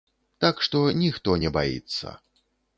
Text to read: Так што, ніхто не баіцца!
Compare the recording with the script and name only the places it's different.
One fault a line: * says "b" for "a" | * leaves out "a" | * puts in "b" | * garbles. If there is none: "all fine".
all fine